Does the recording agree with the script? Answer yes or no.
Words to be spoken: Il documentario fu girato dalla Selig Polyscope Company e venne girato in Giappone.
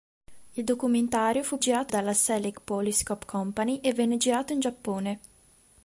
yes